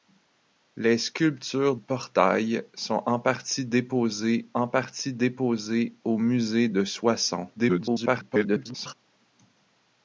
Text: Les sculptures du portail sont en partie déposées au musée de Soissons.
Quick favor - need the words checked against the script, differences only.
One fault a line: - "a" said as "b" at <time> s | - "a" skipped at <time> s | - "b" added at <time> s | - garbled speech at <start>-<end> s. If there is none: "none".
- "du" skipped at 1.8 s
- "en partie déposées" added at 4.5 s
- garbled speech at 7.6-8.9 s